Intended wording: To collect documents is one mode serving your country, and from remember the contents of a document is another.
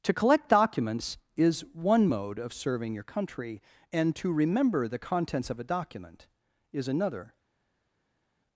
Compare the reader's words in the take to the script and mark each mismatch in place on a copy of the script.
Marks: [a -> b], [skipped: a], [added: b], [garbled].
To collect documents is one mode [added: of] serving your country, and [from -> to] remember the contents of a document is another.